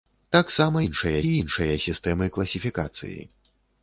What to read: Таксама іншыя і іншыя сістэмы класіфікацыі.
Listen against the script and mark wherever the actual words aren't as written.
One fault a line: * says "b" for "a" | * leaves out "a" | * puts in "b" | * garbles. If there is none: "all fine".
all fine